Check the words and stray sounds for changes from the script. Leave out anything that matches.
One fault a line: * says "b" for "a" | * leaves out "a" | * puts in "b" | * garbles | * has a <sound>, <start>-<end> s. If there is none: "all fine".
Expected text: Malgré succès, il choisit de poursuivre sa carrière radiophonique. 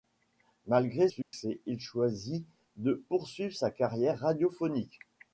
* has a dropout, 1.2-1.3 s